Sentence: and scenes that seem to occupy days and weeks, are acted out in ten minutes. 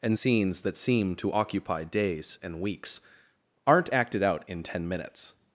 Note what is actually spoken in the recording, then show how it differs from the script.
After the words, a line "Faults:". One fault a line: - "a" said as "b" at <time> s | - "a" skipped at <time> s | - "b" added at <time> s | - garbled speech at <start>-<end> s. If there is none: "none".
and scenes that seem to occupy days and weeks, aren't acted out in ten minutes.
Faults:
- "are" said as "aren't" at 3.6 s